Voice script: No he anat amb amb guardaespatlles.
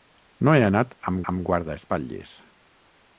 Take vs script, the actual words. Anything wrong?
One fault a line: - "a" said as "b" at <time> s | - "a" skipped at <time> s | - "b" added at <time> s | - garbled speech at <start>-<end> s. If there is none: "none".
none